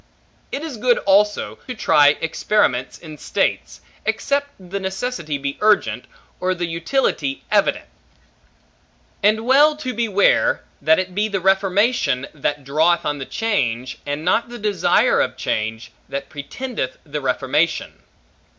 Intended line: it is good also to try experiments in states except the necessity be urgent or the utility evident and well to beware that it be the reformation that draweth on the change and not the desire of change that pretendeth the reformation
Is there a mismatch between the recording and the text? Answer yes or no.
no